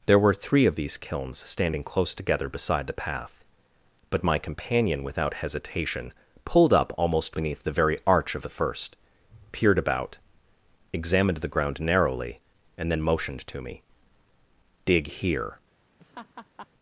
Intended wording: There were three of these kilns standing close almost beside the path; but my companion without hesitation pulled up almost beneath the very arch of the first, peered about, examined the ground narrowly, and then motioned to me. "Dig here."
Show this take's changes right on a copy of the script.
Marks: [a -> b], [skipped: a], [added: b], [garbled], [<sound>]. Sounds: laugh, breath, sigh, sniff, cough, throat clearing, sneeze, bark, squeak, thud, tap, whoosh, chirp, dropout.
There were three of these kilns standing close [almost -> together] beside the path; but my companion without hesitation pulled up almost beneath the very arch of the first, peered about, examined the ground narrowly, and then motioned to me. "Dig here." [laugh]